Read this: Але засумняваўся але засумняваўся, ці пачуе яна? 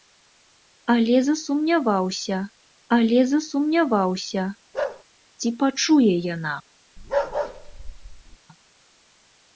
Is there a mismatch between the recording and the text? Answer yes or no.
no